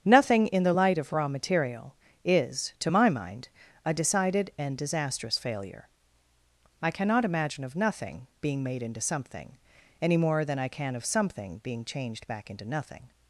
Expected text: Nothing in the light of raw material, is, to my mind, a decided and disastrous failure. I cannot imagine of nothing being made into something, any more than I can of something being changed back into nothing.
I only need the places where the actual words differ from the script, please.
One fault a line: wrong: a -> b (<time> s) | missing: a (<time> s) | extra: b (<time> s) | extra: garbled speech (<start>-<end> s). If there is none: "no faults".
no faults